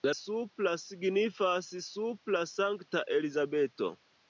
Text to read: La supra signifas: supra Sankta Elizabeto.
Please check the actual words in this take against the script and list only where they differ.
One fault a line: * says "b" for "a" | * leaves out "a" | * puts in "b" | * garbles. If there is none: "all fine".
all fine